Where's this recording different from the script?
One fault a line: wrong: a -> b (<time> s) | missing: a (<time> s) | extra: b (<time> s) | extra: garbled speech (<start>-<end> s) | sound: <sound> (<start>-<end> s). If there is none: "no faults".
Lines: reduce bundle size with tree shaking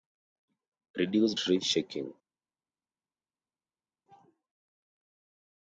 missing: bundle size with (1.4 s)